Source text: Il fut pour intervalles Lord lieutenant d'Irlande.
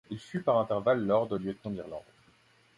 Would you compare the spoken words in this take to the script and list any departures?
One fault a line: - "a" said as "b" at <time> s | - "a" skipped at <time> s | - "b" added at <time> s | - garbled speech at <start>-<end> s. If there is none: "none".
- "pour" said as "par" at 0.4 s